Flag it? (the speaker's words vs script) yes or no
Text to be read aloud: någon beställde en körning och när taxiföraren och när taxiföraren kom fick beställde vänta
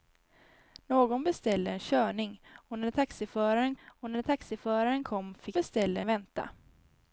no